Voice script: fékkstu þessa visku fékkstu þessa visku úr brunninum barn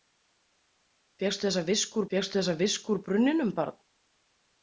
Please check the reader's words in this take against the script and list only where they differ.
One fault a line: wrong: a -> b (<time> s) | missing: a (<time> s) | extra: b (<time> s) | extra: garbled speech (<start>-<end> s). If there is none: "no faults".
no faults